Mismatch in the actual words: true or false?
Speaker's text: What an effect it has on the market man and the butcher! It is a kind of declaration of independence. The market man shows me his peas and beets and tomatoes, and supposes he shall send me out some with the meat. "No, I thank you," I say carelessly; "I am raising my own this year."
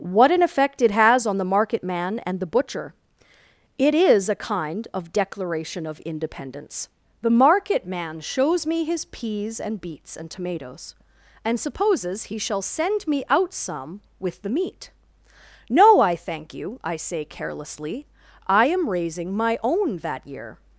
true